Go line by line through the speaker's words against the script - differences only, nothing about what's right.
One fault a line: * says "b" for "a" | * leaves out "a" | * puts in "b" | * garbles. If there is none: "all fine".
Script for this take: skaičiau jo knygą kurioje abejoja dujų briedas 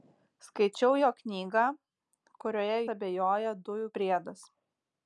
all fine